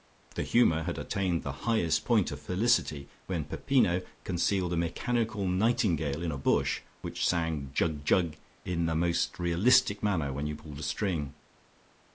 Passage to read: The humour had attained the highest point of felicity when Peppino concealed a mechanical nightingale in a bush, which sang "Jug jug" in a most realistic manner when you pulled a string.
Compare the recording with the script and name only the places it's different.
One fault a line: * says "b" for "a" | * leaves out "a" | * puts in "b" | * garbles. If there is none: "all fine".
* says "the" for "a"